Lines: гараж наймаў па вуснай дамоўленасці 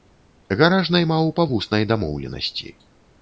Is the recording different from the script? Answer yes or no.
no